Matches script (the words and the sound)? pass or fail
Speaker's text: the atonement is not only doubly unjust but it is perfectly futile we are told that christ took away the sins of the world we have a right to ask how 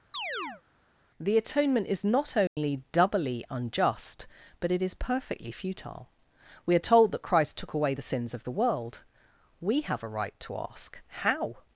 fail